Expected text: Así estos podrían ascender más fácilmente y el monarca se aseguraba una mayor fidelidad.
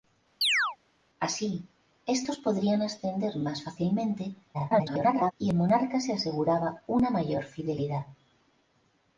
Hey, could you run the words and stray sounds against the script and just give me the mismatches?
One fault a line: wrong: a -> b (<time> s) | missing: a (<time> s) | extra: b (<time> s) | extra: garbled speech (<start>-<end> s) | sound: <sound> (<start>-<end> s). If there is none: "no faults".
sound: chirp (0.4-0.8 s)
extra: garbled speech (4.5-5.3 s)